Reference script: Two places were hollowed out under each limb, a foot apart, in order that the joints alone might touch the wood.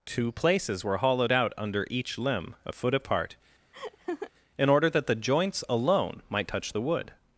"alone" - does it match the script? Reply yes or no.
yes